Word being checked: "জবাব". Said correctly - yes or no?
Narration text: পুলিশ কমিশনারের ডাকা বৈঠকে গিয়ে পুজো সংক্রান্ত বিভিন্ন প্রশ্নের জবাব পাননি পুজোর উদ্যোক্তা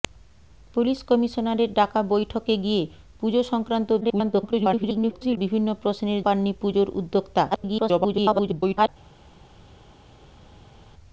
no